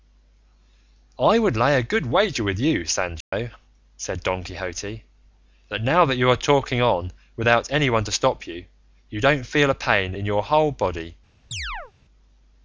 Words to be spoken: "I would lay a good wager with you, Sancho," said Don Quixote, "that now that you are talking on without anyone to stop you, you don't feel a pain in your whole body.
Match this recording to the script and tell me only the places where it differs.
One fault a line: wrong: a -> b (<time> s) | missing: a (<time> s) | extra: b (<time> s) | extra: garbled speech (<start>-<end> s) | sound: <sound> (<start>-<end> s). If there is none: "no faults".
sound: dropout (3.2-3.3 s)
sound: chirp (11.5-11.9 s)